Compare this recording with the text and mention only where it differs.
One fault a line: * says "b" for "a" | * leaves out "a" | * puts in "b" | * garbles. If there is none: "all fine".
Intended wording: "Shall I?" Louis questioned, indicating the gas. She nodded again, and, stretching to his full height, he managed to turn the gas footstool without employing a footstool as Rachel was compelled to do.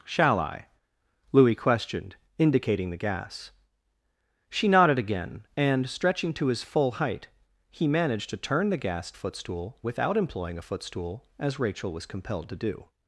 all fine